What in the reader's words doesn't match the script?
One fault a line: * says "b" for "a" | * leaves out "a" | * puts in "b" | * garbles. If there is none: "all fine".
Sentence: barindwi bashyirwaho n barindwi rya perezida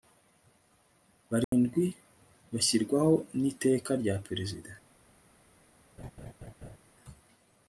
* says "iteka" for "barindwi"